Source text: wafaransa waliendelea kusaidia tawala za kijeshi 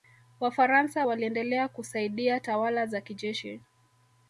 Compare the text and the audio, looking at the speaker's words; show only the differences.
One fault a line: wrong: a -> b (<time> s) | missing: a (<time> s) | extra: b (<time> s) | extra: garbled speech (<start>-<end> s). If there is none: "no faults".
no faults